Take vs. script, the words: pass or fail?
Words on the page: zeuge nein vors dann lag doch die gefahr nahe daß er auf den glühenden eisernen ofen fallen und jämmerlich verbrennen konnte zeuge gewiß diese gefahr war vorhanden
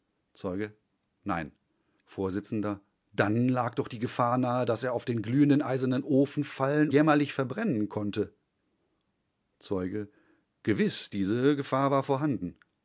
fail